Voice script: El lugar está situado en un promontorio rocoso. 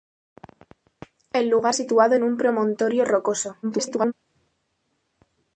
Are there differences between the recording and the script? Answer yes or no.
yes